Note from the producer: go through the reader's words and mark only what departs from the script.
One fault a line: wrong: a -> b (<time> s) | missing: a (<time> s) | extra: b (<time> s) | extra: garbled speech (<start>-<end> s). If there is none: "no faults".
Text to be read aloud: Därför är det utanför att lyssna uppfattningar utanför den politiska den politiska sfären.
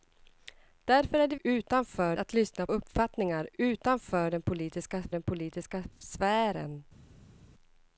no faults